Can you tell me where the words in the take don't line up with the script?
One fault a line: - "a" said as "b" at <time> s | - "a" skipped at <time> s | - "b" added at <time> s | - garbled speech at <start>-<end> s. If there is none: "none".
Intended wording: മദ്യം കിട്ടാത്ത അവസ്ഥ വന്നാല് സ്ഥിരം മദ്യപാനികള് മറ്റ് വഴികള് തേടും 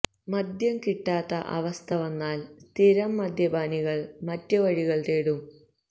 none